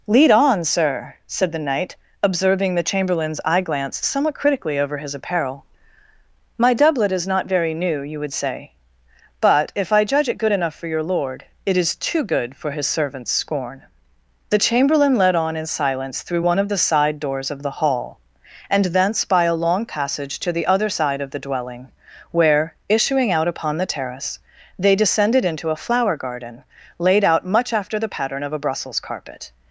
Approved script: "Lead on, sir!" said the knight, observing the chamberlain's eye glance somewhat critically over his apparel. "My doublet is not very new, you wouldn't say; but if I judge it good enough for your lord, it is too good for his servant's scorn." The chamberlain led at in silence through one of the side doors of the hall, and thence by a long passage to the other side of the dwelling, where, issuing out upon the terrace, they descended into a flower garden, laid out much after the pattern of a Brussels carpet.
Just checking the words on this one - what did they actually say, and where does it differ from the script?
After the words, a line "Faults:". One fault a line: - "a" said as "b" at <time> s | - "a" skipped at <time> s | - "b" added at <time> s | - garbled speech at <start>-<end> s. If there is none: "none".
"Lead on, sir!" said the knight, observing the chamberlain's eye glance somewhat critically over his apparel. "My doublet is not very new, you would say; but if I judge it good enough for your lord, it is too good for his servant's scorn." The chamberlain led on in silence through one of the side doors of the hall, and thence by a long passage to the other side of the dwelling, where, issuing out upon the terrace, they descended into a flower garden, laid out much after the pattern of a Brussels carpet.
Faults:
- "wouldn't" said as "would" at 8.2 s
- "at" said as "on" at 15.4 s